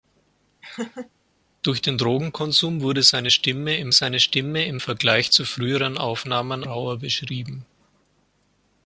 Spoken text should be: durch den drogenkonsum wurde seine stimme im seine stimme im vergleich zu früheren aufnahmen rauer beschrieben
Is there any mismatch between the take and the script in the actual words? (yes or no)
no